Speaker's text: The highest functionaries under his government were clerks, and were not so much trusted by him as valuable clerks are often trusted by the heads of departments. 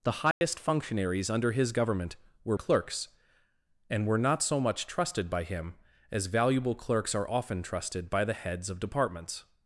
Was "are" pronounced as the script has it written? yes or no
yes